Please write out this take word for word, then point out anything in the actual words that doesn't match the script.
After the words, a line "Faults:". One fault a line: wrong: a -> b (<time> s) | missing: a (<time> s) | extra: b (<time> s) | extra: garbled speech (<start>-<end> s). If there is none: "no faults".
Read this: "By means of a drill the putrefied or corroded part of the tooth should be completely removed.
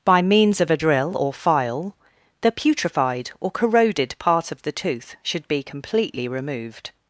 "By means of a drill or file the putrefied or corroded part of the tooth should be completely removed.
Faults:
extra: or file (1.1 s)